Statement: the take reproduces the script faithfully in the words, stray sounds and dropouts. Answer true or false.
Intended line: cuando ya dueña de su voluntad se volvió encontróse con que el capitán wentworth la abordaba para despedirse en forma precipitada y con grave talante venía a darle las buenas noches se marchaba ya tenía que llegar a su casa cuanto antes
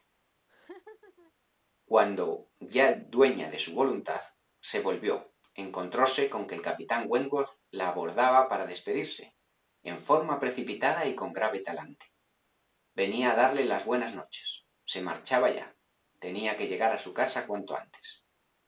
false